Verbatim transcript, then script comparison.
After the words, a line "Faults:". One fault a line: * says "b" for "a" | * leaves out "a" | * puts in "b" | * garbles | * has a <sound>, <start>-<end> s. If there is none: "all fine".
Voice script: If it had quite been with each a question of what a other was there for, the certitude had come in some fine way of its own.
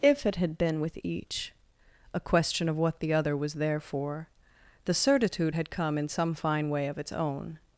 If it had been with each a question of what the other was there for, the certitude had come in some fine way of its own.
Faults:
* leaves out "quite"
* says "the" for "a"